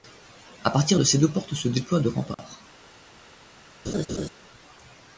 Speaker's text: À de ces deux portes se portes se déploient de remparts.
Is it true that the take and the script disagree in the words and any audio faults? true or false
true